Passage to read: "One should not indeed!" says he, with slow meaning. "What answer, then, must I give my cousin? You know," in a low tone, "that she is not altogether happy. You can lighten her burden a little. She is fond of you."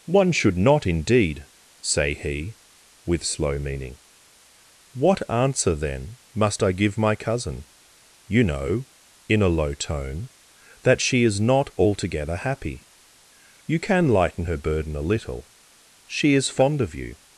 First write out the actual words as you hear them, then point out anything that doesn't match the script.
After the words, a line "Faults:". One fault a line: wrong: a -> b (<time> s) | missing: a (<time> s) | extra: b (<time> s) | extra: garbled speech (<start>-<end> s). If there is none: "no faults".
"One should not indeed!" say he, with slow meaning. "What answer, then, must I give my cousin? You know," in a low tone, "that she is not altogether happy. You can lighten her burden a little. She is fond of you."
Faults:
wrong: says -> say (1.8 s)